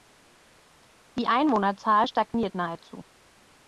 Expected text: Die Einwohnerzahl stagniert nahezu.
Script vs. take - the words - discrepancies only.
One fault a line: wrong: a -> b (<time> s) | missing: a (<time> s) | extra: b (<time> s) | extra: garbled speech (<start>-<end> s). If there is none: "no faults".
no faults